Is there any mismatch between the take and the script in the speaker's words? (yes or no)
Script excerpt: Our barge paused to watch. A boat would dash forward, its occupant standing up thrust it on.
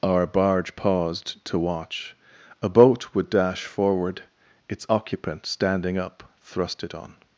no